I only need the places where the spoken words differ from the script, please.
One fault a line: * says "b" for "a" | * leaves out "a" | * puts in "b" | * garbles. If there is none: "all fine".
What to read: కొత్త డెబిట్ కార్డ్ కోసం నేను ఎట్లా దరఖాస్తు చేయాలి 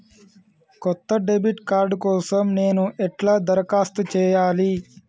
all fine